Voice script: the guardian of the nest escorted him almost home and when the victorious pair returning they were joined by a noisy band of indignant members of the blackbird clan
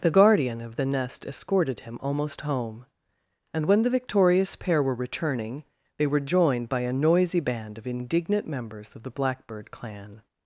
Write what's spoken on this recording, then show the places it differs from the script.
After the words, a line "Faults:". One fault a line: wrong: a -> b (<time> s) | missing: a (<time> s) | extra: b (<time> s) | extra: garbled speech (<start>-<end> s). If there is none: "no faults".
the guardian of the nest escorted him almost home and when the victorious pair were returning they were joined by a noisy band of indignant members of the blackbird clan
Faults:
extra: were (4.8 s)